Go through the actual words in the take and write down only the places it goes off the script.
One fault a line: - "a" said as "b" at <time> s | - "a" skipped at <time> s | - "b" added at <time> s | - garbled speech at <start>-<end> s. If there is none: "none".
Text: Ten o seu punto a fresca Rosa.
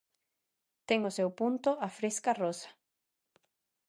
none